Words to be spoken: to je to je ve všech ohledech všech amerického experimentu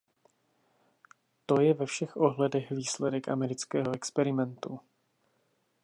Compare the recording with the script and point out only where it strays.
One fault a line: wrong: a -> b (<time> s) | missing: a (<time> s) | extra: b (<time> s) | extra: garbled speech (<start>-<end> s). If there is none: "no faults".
missing: to je (1.7 s)
wrong: všech -> výsledek (2.7 s)